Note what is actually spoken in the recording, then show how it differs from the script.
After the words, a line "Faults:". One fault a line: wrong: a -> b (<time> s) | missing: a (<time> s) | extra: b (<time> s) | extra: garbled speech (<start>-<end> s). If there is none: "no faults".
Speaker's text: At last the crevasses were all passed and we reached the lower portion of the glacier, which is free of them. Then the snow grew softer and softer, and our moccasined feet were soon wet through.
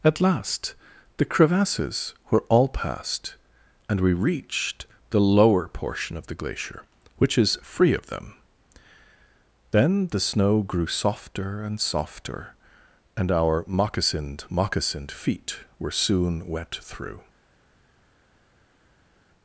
At last the crevasses were all passed and we reached the lower portion of the glacier, which is free of them. Then the snow grew softer and softer, and our moccasined moccasined feet were soon wet through.
Faults:
extra: moccasined (14.5 s)